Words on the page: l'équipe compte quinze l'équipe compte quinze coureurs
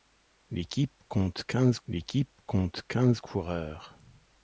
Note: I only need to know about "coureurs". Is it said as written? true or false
true